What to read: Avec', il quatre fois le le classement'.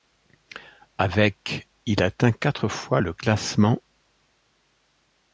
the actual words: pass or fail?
fail